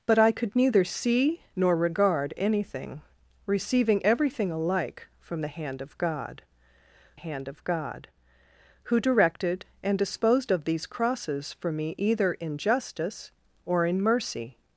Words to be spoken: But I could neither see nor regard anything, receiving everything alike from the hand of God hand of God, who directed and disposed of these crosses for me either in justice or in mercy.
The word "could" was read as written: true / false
true